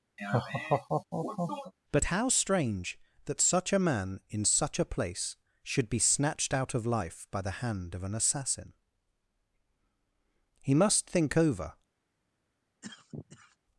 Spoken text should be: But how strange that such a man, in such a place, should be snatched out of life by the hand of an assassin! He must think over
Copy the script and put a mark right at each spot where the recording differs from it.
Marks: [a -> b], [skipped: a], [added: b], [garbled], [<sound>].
[laugh] But how strange that such a man, in such a place, should be snatched out of life by the hand of an assassin! He must think over [cough]